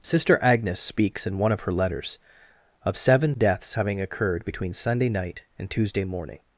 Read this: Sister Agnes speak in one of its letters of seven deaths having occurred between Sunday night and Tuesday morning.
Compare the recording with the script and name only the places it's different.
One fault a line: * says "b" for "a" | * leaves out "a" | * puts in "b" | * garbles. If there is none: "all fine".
* says "speaks" for "speak"
* says "her" for "its"